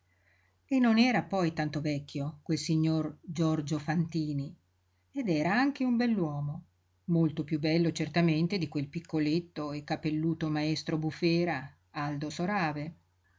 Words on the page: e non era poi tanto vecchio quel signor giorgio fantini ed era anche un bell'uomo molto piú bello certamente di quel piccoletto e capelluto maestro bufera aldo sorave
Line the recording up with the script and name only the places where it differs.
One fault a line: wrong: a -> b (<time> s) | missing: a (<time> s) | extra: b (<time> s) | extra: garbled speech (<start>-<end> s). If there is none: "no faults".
no faults